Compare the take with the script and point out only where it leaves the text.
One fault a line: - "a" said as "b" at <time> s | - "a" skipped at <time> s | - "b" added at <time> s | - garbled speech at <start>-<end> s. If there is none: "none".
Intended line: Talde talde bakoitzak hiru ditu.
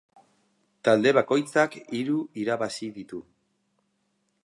- "talde" skipped at 1.1 s
- "irabazi" added at 2.5 s